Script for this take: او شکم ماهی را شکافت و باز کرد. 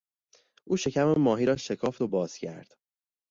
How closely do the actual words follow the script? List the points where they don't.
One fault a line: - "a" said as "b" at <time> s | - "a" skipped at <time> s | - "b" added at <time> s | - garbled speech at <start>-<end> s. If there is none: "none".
none